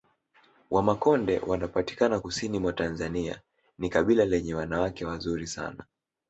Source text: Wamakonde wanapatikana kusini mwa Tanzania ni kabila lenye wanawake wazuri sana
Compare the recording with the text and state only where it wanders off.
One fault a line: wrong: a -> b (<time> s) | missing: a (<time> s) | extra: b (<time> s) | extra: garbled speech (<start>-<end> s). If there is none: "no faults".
no faults